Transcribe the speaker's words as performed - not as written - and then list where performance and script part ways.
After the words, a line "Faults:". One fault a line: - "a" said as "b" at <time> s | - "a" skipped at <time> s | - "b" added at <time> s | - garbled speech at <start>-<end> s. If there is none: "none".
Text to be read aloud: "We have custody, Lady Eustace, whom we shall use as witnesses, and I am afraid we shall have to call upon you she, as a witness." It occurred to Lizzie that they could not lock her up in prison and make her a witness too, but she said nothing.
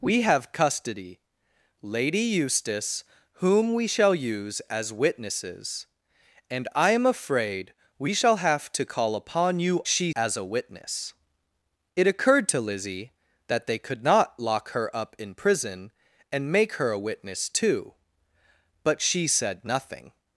"We have custody, Lady Eustace, whom we shall use as witnesses, and I am afraid we shall have to call upon you she, as a witness." It occurred to Lizzie that they could not lock her up in prison and make her a witness too, but she said nothing.
Faults:
none